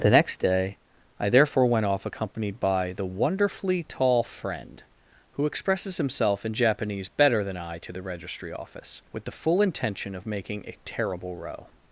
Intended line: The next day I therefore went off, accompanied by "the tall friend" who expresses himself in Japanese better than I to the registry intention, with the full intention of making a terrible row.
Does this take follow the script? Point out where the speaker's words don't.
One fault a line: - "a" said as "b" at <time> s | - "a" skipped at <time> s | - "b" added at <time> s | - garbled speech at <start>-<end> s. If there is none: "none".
- "wonderfully" added at 3.0 s
- "intention" said as "office" at 8.5 s